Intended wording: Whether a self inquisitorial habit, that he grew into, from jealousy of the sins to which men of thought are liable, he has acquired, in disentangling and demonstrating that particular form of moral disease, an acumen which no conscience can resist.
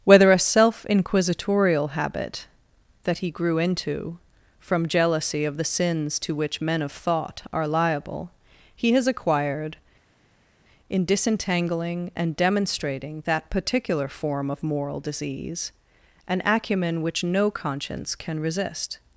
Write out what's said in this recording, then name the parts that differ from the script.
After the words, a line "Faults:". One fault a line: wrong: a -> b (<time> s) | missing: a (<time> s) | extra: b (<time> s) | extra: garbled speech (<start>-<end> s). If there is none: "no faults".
Whether a self inquisitorial habit, that he grew into, from jealousy of the sins to which men of thought are liable, he has acquired, in disentangling and demonstrating that particular form of moral disease, an acumen which no conscience can resist.
Faults:
no faults